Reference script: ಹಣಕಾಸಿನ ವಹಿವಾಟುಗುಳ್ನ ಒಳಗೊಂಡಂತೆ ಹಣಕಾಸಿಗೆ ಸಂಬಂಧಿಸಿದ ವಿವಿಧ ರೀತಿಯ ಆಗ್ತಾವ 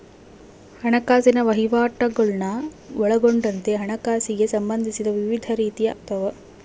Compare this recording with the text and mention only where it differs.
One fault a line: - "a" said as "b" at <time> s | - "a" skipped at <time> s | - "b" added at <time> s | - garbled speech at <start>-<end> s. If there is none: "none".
none